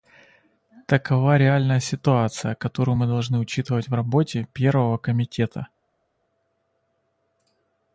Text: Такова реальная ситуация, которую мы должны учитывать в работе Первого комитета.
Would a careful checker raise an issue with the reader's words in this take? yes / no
no